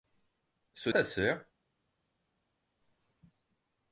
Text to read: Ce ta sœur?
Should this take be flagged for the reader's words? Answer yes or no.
no